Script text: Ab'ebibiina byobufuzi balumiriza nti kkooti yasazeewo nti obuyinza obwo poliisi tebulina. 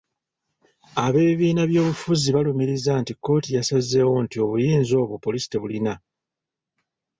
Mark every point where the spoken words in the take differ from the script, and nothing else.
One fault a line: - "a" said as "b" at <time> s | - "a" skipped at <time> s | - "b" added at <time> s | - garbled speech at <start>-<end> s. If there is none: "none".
none